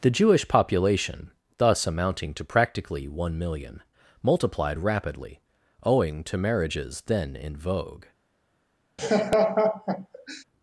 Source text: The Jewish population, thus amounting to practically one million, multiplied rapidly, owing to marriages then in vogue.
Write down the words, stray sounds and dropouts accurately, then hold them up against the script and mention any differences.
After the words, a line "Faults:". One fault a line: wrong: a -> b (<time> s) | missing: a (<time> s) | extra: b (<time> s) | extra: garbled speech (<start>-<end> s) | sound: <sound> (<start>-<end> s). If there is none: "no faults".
The Jewish population, thus amounting to practically one million, multiplied rapidly, owing to marriages then in vogue.
Faults:
sound: laugh (9.0-10.4 s)